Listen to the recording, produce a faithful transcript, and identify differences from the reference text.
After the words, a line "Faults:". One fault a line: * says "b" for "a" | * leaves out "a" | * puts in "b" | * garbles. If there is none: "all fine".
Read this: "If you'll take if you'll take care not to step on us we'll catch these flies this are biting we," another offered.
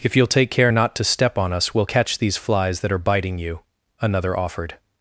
"If you'll take care not to step on us we'll catch these flies that are biting you," another offered.
Faults:
* leaves out "if you'll take"
* says "that" for "this"
* says "you" for "we"